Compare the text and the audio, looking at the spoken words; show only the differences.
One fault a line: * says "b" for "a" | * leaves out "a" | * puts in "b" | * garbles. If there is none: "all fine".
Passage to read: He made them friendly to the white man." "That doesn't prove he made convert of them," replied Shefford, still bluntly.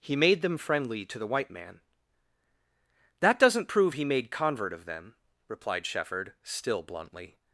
all fine